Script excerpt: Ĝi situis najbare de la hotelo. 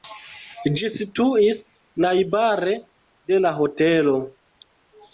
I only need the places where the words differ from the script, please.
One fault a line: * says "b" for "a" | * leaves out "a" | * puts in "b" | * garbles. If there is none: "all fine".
all fine